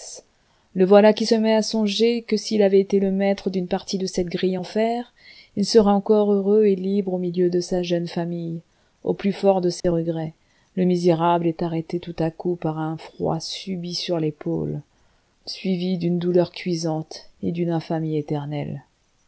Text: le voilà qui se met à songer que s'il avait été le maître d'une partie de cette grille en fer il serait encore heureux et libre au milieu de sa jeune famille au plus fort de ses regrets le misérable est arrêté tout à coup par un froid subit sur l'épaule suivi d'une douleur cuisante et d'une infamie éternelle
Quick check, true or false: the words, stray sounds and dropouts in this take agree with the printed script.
false